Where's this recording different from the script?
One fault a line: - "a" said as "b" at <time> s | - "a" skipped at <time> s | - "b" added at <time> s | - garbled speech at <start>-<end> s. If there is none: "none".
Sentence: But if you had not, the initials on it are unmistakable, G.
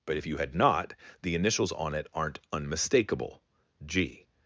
- "are" said as "aren't" at 2.1 s